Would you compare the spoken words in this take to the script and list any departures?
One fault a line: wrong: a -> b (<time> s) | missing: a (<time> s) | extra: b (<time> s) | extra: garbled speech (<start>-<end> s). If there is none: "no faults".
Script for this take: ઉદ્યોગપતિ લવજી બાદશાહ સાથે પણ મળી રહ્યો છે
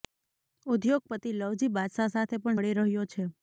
no faults